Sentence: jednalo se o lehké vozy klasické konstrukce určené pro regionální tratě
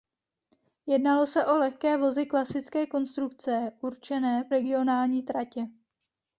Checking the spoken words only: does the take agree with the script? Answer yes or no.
no